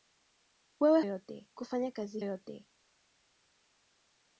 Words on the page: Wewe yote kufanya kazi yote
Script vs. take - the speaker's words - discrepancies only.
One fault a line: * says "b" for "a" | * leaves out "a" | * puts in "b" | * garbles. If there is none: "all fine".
all fine